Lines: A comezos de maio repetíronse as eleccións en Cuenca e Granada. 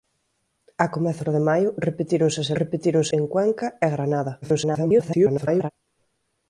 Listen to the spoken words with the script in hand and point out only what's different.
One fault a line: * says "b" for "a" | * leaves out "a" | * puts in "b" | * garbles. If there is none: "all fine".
* says "repetíronse" for "eleccións"
* garbles